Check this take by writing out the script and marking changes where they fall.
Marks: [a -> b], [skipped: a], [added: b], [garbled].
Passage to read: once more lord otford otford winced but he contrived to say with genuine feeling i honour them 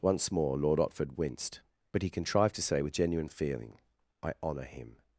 once more lord otford [skipped: otford] winced but he contrived to say with genuine feeling i honour [them -> him]